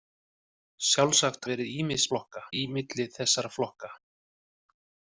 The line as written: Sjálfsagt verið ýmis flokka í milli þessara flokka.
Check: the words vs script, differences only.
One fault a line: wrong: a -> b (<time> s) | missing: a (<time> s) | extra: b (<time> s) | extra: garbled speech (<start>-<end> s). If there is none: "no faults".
no faults